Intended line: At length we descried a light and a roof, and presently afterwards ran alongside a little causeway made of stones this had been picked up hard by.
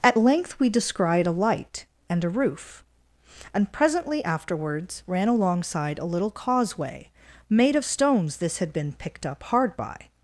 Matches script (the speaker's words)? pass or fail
pass